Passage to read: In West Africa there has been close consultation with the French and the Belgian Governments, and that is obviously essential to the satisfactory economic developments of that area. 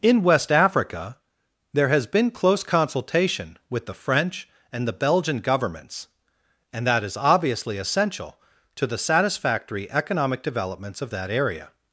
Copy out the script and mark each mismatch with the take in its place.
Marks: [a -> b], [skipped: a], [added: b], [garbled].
In West Africa there has been close consultation with the French and the Belgian Governments, and that is obviously essential to the satisfactory economic developments of that area.